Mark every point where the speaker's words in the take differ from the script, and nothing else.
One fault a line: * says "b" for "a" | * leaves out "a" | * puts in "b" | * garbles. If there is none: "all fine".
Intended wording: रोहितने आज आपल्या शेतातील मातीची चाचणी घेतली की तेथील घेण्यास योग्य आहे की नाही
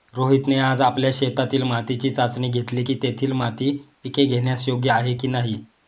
* puts in "माती पिके"